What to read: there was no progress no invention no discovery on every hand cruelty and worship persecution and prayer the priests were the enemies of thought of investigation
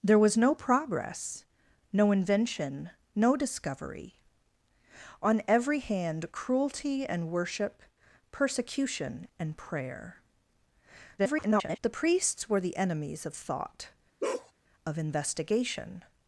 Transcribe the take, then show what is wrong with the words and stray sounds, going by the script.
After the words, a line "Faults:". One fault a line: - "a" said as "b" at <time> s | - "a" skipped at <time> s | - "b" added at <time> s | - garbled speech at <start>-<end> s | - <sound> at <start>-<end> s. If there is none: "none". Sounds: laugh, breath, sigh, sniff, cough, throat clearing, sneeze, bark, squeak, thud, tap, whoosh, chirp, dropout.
there was no progress no invention no discovery on every hand cruelty and worship persecution and prayer [garbled] the priests were the enemies of thought of investigation
Faults:
- garbled speech at 11.2-11.8 s
- bark at 14.2-14.5 s